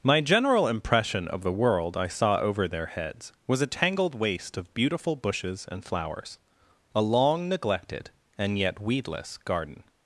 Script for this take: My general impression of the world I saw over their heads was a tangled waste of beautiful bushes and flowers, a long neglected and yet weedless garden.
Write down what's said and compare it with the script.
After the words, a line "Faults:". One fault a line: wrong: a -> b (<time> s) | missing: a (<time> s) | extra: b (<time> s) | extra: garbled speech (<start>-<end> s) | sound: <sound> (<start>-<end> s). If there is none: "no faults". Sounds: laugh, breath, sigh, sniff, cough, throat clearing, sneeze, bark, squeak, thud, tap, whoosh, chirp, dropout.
My general impression of the world I saw over their heads was a tangled waste of beautiful bushes and flowers, a long neglected and yet weedless garden.
Faults:
no faults